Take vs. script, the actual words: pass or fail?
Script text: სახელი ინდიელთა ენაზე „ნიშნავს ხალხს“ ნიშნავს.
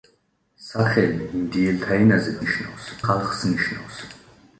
pass